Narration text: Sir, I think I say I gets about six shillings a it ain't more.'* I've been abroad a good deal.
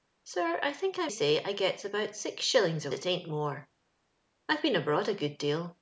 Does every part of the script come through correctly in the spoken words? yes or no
yes